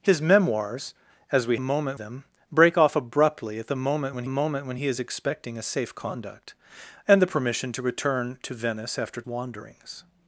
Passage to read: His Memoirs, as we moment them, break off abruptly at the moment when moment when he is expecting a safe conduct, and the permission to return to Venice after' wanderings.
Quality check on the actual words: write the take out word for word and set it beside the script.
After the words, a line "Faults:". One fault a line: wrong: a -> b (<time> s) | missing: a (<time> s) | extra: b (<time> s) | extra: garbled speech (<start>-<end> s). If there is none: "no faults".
His Memoirs, as we moment them, break off abruptly at the moment when moment when he is expecting a safe conduct, and the permission to return to Venice after' wanderings.
Faults:
no faults